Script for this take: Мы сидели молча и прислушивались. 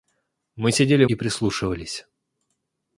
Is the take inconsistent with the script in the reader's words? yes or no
yes